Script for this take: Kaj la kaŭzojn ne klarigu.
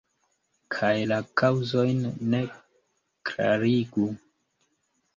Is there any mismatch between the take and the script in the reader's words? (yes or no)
no